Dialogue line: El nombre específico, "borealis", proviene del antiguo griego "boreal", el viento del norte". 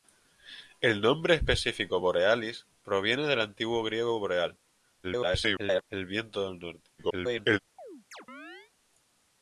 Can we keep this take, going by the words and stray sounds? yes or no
no